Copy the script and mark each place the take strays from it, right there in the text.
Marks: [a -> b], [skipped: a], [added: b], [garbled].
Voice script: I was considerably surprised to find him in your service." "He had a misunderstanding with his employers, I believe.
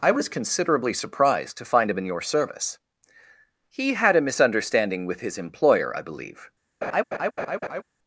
I was considerably surprised to find him in your service." "He had a misunderstanding with his [employers, -> employer] I believe.